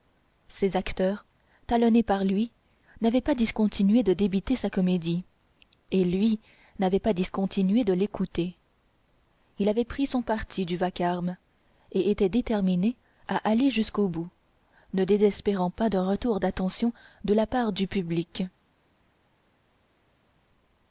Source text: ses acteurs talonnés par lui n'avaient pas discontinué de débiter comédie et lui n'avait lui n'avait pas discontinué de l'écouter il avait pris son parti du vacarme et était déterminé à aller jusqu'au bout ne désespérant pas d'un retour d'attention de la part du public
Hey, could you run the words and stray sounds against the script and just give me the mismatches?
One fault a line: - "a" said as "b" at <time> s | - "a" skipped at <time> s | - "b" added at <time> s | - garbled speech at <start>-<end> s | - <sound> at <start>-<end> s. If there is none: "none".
- "sa" added at 4.5 s
- "lui n'avait" skipped at 7.0 s